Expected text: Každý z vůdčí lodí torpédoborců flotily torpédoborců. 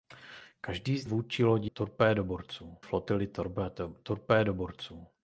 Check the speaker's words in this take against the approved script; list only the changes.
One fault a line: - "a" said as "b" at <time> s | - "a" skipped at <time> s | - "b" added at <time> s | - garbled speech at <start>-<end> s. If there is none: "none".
none